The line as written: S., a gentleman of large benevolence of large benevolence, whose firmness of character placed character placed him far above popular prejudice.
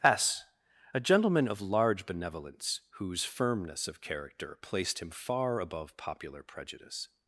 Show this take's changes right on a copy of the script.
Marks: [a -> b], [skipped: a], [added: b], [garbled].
S., a gentleman of large benevolence [skipped: of large benevolence,] whose firmness of character placed [skipped: character placed] him far above popular prejudice.